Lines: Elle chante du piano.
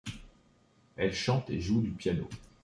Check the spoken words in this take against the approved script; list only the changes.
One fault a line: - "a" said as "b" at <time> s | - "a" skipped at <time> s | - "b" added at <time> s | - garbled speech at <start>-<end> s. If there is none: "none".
- "et joue" added at 1.5 s